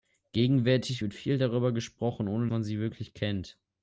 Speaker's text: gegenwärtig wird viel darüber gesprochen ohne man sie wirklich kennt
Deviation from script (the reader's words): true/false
false